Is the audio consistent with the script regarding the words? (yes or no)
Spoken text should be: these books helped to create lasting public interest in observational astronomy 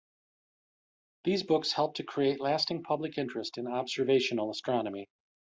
yes